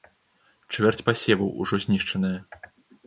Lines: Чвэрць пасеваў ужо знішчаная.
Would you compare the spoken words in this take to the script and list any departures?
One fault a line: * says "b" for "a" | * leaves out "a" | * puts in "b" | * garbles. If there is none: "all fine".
all fine